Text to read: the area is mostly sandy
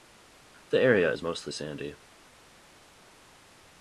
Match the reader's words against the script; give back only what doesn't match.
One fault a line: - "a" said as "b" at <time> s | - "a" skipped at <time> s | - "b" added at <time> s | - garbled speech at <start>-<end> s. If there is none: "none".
none